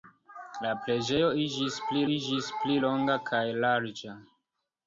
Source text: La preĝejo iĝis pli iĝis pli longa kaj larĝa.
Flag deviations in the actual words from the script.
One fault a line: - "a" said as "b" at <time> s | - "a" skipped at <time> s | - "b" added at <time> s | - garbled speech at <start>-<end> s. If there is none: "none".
none